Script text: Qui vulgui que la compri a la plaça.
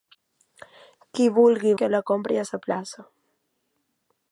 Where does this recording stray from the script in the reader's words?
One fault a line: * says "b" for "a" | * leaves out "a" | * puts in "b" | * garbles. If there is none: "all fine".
all fine